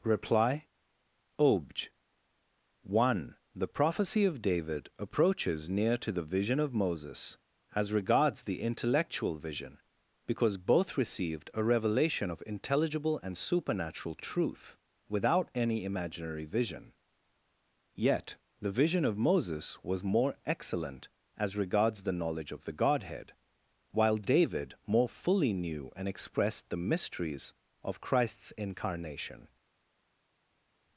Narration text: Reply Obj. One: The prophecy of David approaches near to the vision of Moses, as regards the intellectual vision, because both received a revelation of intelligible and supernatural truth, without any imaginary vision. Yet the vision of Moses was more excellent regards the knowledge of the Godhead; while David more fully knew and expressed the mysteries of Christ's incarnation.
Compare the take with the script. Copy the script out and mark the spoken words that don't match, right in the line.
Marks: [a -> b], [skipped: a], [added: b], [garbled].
Reply Obj. One: The prophecy of David approaches near to the vision of Moses, as regards the intellectual vision, because both received a revelation of intelligible and supernatural truth, without any imaginary vision. Yet the vision of Moses was more excellent [added: as] regards the knowledge of the Godhead; while David more fully knew and expressed the mysteries of Christ's incarnation.